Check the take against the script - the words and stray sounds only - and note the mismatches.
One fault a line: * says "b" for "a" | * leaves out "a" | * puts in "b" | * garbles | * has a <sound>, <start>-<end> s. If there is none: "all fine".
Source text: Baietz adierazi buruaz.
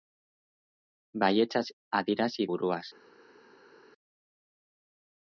all fine